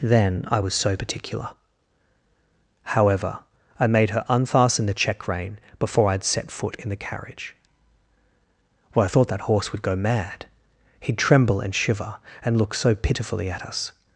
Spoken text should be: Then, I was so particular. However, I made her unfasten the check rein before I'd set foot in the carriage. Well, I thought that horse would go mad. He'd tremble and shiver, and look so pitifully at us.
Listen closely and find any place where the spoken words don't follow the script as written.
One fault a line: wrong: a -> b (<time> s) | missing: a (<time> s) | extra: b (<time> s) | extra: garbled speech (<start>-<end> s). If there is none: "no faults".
no faults